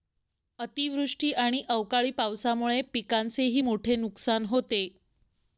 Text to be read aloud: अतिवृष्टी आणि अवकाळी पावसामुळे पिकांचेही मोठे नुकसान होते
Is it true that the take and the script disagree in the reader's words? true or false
false